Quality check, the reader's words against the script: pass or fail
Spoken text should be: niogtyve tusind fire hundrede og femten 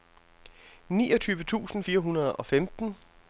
pass